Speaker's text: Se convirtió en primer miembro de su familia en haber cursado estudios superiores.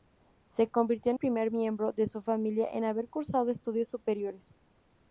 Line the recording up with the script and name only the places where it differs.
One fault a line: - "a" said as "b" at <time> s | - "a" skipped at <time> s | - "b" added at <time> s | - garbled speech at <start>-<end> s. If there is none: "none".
none